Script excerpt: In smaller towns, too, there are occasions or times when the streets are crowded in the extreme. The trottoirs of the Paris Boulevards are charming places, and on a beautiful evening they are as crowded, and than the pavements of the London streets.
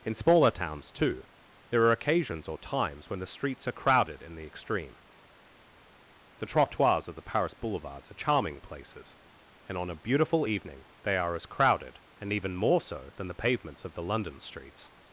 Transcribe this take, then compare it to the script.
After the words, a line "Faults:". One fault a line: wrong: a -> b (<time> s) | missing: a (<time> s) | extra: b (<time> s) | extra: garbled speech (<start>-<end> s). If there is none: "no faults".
In smaller towns, too, there are occasions or times when the streets are crowded in the extreme. The trottoirs of the Paris Boulevards are charming places, and on a beautiful evening they are as crowded, and even more so than the pavements of the London streets.
Faults:
extra: even more so (12.3 s)